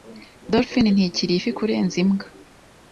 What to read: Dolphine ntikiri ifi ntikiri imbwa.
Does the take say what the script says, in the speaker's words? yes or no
no